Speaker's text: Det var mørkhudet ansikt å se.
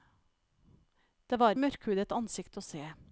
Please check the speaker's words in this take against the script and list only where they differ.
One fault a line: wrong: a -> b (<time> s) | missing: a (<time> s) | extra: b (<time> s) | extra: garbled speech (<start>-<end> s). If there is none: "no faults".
no faults